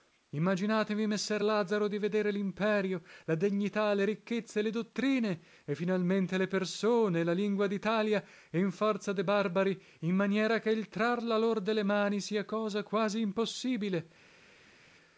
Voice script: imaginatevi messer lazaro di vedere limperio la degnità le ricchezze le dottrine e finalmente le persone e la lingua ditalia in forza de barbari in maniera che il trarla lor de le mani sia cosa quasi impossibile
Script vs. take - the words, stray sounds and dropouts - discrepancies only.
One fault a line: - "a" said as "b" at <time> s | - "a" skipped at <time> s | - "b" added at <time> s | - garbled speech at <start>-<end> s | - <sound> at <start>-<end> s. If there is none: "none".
none